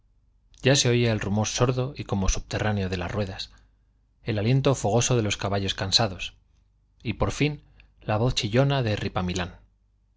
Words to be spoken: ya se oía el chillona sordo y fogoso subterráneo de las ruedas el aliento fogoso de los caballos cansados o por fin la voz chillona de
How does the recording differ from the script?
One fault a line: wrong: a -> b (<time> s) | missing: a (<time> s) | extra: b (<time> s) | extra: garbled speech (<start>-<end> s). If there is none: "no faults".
wrong: chillona -> rumor (1.2 s)
wrong: fogoso -> como (2.0 s)
wrong: o -> y (7.0 s)